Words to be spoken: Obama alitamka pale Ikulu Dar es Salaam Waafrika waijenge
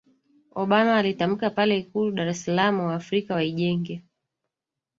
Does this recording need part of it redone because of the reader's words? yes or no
no